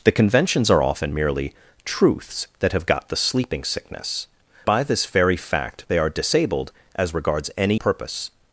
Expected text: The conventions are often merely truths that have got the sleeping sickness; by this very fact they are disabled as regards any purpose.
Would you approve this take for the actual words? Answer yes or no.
yes